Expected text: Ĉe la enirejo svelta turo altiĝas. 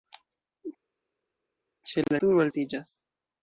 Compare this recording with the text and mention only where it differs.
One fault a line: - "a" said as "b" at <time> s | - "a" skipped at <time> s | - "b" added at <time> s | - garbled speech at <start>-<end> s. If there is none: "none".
- "enirejo svelta" skipped at 2.2 s